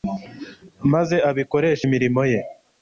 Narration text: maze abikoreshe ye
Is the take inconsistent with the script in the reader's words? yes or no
yes